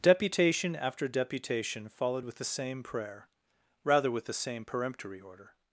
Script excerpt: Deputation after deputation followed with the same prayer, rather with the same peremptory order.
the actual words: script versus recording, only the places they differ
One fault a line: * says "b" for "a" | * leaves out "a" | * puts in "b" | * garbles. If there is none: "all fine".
all fine